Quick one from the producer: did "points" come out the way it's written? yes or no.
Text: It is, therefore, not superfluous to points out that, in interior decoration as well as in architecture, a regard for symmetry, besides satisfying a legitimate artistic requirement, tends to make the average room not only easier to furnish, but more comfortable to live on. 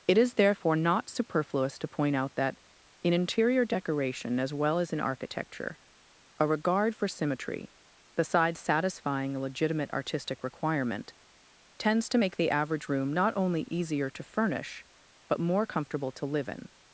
no